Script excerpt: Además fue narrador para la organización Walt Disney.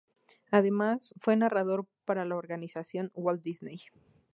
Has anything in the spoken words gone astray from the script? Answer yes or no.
no